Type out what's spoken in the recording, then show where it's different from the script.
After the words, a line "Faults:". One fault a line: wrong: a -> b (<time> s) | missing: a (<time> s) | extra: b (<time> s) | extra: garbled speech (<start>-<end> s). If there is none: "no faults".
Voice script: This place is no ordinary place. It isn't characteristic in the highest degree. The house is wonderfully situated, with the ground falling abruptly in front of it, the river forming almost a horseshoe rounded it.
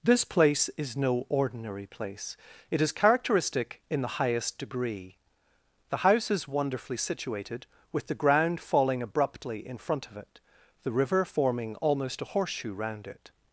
This place is no ordinary place. It is characteristic in the highest degree. The house is wonderfully situated, with the ground falling abruptly in front of it, the river forming almost a horseshoe round it.
Faults:
wrong: isn't -> is (2.8 s)
wrong: rounded -> round (12.7 s)